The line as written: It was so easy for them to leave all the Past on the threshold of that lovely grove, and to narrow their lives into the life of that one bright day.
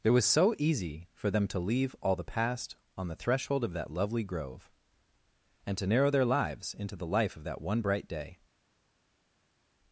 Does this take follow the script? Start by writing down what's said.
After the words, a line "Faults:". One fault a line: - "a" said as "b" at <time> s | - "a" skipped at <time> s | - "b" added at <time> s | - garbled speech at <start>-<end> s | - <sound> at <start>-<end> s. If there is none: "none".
It was so easy for them to leave all the Past on the threshold of that lovely grove, and to narrow their lives into the life of that one bright day.
Faults:
none